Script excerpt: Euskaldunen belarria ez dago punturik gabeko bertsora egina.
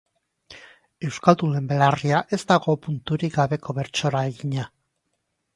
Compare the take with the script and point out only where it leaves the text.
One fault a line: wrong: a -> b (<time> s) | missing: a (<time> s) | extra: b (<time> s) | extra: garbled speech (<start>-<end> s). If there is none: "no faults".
no faults